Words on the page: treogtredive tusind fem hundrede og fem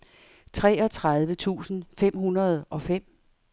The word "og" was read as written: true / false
true